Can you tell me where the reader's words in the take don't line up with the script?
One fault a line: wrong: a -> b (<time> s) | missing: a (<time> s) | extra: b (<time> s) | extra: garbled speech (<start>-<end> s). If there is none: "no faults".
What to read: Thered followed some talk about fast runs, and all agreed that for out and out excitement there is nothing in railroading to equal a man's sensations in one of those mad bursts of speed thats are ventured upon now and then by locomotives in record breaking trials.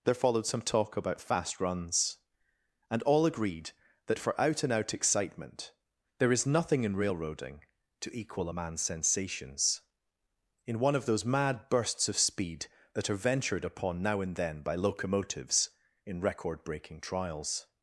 wrong: Thered -> There (0.0 s)
wrong: thats -> that (12.9 s)